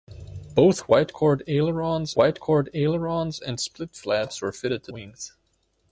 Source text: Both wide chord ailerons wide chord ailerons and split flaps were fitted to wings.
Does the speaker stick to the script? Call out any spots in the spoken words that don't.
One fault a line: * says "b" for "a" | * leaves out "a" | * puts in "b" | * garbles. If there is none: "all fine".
all fine